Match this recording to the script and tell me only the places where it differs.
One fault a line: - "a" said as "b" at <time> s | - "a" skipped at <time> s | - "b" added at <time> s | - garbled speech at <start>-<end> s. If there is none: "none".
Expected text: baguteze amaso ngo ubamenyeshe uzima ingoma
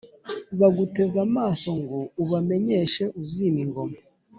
none